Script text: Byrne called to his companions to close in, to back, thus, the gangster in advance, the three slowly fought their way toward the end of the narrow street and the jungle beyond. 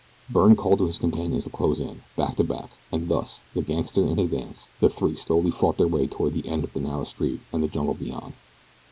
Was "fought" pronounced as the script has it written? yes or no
yes